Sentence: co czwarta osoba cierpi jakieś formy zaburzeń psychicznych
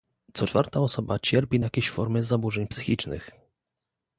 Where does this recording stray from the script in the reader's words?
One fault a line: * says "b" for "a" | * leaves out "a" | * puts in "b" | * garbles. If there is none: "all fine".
all fine